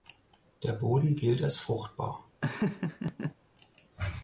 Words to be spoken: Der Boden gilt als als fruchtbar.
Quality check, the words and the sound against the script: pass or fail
fail